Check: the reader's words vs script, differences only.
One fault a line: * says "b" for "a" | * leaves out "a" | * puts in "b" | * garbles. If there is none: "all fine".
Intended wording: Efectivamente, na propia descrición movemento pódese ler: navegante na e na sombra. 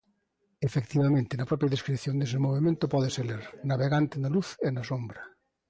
* puts in "dese"
* puts in "luz"